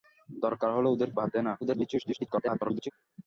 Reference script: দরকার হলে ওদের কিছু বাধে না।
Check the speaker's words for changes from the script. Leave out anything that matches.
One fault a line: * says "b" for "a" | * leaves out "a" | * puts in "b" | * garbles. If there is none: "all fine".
* leaves out "কিছু"
* garbles